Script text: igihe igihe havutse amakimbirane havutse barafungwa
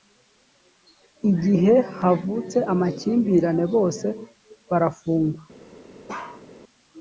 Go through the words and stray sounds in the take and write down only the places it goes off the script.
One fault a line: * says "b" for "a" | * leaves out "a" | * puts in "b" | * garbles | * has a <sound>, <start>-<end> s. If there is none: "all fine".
* leaves out "igihe"
* says "bose" for "havutse"
* has a bark, 6.1-6.4 s